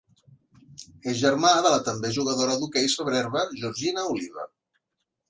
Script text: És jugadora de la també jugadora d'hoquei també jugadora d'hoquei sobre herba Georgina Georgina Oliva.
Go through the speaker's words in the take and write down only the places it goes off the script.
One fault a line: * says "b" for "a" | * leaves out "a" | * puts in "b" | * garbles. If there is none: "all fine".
* says "germà" for "jugadora"
* leaves out "també jugadora d'hoquei"
* leaves out "Georgina"